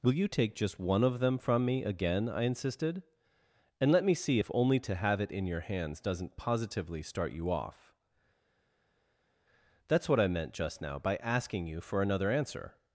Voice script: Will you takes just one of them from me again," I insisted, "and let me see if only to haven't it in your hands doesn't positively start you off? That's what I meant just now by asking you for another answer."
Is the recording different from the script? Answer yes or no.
yes